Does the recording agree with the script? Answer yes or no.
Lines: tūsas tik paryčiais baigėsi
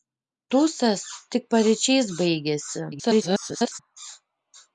no